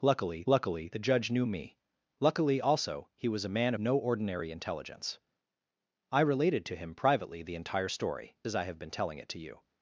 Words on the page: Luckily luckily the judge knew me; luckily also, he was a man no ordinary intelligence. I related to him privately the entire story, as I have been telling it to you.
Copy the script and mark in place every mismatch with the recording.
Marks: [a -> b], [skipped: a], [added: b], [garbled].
Luckily luckily the judge knew me; luckily also, he was a man no ordinary intelligence. I related to him privately the entire story, as I have been telling it to you.